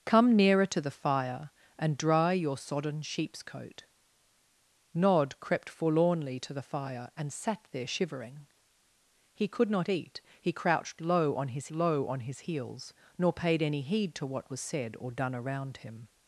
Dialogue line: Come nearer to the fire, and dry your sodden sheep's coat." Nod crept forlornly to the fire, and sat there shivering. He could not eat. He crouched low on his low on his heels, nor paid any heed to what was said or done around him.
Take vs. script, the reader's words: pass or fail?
pass